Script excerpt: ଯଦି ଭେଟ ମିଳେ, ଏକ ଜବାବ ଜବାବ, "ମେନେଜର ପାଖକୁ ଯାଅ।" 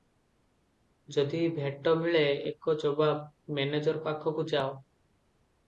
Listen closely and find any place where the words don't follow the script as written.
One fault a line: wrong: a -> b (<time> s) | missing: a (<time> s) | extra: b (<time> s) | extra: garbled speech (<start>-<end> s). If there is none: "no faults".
missing: ଜବାବ (3.2 s)